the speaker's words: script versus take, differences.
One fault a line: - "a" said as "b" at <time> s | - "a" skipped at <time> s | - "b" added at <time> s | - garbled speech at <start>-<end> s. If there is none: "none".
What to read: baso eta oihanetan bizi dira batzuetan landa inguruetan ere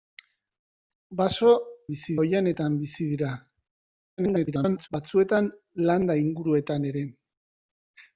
- "eta" said as "bizi" at 1.9 s
- garbled speech at 4.2-4.9 s